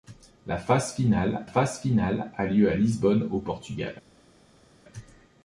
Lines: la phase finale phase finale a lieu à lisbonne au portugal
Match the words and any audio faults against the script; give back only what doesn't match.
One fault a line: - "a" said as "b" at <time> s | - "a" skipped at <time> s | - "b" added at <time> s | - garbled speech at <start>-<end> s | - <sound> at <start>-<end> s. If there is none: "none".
none